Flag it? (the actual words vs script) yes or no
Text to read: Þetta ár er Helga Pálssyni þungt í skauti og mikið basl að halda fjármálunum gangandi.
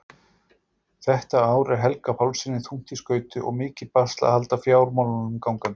no